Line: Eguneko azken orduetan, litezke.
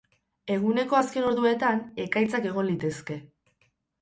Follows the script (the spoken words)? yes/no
no